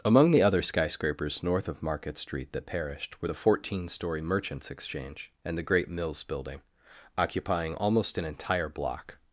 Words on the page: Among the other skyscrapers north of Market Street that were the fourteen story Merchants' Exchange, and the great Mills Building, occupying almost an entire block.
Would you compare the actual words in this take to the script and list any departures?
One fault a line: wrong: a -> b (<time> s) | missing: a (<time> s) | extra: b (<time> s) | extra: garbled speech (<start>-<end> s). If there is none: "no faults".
extra: perished (2.6 s)